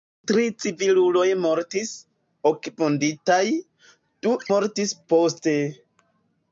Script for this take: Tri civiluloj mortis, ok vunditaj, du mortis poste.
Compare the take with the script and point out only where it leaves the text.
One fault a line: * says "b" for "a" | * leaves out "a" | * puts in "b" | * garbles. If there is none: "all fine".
all fine